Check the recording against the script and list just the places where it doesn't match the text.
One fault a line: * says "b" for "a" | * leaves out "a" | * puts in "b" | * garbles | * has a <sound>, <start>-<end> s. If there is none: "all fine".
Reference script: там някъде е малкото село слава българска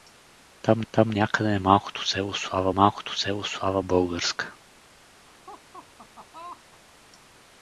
* puts in "там"
* puts in "малкото село слава"
* has a laugh, 5.3-6.8 s